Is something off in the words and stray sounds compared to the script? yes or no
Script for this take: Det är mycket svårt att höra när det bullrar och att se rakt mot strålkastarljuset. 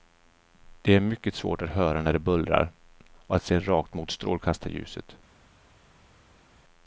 no